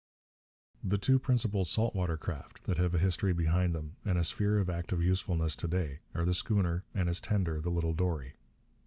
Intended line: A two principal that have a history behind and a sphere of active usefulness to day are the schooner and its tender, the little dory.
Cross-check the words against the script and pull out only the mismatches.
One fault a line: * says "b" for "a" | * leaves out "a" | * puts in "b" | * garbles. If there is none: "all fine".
* says "The" for "A"
* puts in "salt water craft"
* puts in "them"